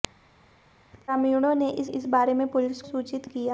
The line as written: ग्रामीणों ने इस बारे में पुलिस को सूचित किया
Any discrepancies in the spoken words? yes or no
yes